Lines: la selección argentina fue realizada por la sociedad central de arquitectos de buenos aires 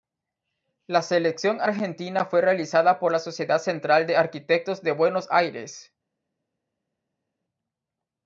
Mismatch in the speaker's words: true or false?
false